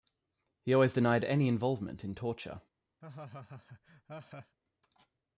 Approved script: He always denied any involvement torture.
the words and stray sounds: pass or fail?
fail